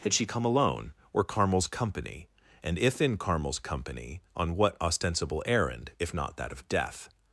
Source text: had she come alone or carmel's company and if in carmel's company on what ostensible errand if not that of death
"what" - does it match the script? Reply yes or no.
yes